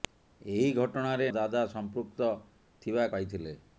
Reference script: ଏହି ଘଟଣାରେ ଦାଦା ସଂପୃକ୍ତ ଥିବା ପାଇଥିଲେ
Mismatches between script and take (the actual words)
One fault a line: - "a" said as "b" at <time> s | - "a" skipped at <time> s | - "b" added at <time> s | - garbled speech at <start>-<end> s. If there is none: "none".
none